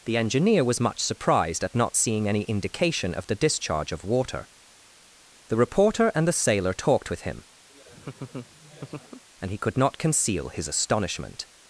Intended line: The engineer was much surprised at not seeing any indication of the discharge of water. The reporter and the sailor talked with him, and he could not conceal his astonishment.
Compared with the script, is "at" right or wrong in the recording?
right